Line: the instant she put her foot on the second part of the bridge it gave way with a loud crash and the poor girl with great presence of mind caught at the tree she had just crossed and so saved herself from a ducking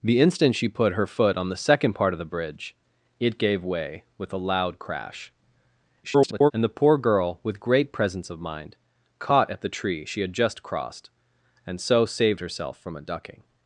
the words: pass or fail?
fail